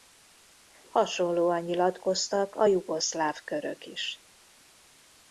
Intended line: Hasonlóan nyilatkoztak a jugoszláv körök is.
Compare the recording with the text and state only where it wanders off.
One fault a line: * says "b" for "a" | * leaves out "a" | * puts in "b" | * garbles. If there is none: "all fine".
all fine